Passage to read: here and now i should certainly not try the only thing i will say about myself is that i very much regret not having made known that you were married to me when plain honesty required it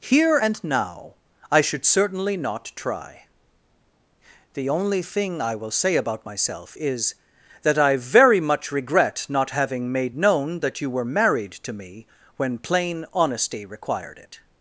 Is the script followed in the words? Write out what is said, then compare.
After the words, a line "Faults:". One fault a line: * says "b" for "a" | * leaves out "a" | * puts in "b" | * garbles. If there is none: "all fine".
here and now i should certainly not try the only thing i will say about myself is that i very much regret not having made known that you were married to me when plain honesty required it
Faults:
all fine